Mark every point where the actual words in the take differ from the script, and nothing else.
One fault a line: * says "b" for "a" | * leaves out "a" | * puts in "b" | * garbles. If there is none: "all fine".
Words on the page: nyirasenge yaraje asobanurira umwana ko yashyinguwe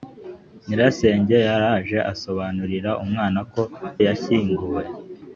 all fine